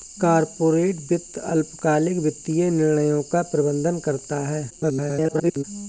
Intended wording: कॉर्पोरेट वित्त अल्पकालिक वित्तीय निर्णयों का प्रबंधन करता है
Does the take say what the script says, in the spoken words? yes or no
no